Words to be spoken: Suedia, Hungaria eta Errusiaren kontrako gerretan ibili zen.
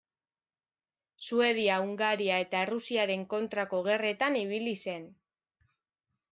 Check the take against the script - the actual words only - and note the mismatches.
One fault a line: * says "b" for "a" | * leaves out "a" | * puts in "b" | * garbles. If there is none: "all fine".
all fine